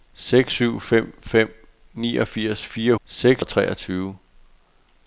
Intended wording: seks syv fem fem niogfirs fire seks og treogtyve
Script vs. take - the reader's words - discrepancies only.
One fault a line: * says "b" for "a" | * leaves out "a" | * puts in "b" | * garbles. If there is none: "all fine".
all fine